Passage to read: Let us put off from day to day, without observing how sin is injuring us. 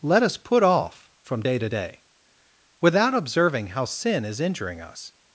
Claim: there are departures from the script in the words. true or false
false